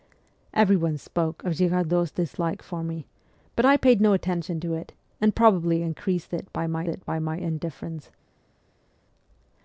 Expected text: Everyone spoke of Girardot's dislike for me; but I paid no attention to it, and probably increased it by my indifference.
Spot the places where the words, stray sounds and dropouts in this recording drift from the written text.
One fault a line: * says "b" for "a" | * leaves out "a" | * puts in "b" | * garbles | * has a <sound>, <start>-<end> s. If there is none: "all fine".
* puts in "it by my"